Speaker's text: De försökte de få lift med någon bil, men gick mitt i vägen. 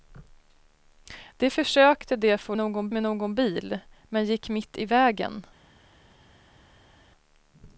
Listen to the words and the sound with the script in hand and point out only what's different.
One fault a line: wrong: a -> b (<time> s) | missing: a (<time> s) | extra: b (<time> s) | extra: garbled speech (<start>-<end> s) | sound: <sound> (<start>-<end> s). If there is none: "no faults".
wrong: lift -> någon (2.6 s)